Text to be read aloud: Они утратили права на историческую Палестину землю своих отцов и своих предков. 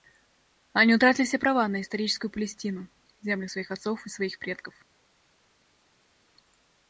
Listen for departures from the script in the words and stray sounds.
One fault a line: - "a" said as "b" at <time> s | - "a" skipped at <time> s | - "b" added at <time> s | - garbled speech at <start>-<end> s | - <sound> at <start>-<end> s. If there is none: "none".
- "все" added at 1.3 s